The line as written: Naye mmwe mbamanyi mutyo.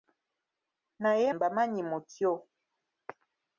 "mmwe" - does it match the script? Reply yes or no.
no